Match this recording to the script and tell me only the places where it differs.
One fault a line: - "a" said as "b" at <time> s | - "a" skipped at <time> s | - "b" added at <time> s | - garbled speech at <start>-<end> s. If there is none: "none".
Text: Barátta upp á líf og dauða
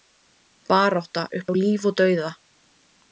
none